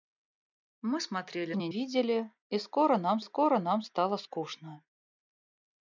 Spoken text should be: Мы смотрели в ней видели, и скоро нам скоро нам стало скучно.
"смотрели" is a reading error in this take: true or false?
false